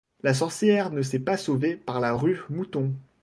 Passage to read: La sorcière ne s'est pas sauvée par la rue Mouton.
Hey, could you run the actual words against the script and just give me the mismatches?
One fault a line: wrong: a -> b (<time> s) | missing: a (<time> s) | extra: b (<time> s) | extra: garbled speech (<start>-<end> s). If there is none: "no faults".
no faults